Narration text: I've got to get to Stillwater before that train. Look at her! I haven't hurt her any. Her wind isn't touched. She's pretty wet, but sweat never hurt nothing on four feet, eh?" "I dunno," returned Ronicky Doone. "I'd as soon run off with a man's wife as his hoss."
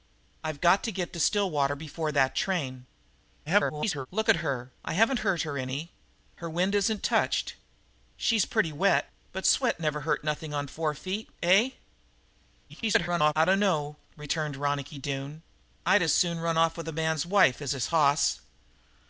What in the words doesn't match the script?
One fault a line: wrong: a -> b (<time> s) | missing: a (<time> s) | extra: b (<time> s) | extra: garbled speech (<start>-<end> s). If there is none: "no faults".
extra: garbled speech (3.5-4.1 s)
extra: garbled speech (12.7-13.3 s)